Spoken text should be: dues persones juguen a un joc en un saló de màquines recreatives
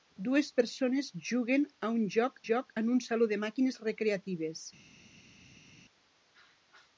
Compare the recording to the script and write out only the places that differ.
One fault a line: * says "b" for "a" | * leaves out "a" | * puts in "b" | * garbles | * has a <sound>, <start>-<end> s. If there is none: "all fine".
* puts in "joc"